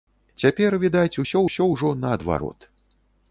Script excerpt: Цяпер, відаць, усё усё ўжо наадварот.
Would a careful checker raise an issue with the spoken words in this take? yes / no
no